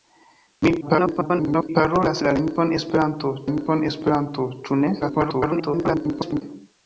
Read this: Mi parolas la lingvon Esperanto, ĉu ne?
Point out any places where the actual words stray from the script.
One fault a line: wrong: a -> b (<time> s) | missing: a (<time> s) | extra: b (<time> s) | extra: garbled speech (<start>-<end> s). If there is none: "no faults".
extra: garbled speech (0.8-1.7 s)
extra: lingvon Esperanto (3.5 s)
extra: garbled speech (5.0-6.4 s)